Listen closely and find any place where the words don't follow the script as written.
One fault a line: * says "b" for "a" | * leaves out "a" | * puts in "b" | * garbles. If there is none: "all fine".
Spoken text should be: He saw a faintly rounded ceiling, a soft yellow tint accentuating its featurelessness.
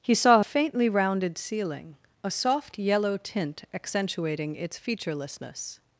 all fine